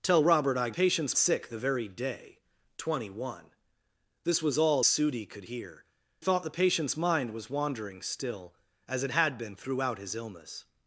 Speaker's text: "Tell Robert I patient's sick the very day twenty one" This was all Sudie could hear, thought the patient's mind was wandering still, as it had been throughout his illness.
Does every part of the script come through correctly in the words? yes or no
yes